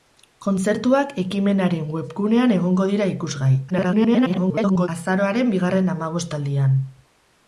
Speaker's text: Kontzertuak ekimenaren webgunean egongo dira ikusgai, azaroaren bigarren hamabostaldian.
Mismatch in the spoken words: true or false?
true